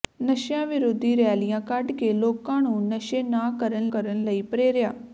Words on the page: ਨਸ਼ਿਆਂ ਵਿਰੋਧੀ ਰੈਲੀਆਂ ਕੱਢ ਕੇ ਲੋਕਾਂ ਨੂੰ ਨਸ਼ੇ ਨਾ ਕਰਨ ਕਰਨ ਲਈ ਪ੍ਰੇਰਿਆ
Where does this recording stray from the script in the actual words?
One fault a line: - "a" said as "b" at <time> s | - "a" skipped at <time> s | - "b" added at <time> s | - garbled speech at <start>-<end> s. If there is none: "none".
none